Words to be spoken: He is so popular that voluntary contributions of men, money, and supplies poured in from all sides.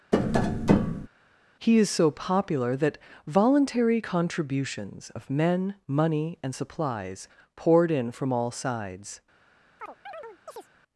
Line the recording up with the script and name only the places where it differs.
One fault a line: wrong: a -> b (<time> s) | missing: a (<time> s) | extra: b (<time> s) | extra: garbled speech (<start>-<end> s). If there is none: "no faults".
no faults